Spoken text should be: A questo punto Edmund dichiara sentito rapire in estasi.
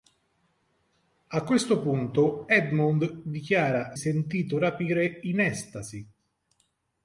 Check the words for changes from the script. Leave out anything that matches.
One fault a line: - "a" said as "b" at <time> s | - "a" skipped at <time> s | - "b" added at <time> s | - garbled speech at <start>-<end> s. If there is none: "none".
none